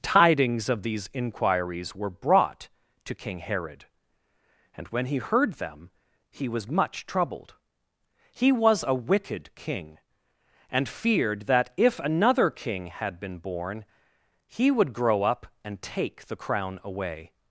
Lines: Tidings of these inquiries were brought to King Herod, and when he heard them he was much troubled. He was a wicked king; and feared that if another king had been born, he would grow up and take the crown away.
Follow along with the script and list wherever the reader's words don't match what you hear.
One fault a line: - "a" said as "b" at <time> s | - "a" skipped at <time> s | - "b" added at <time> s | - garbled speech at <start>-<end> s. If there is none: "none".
none